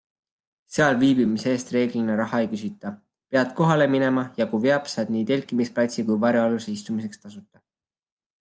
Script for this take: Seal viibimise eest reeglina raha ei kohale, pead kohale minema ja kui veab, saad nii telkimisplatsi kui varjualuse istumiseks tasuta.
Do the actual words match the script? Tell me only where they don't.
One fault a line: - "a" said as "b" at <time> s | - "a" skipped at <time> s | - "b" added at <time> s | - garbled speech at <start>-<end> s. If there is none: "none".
- "kohale" said as "küsita" at 2.5 s